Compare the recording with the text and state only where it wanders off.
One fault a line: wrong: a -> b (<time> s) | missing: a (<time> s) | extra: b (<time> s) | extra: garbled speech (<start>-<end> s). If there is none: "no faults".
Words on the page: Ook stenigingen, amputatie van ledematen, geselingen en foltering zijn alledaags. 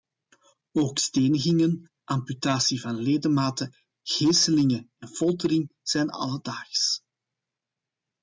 no faults